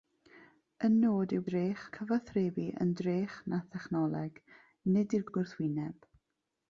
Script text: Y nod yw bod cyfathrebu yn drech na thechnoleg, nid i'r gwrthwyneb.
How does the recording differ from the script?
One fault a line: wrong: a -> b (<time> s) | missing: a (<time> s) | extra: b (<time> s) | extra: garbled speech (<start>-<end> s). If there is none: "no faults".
wrong: bod -> drech (1.5 s)
extra: i'r (5.3 s)